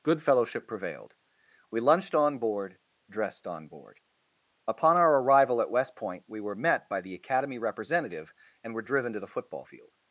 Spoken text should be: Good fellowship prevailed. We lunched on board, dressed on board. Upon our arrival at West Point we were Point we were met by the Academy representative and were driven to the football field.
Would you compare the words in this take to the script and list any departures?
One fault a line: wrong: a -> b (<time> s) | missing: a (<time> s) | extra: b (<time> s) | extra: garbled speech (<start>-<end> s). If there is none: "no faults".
missing: Point we were (6.5 s)